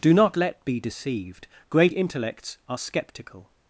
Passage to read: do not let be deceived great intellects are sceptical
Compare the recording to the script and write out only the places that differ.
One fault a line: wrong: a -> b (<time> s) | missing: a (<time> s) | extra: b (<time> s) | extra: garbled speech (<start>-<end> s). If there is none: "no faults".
no faults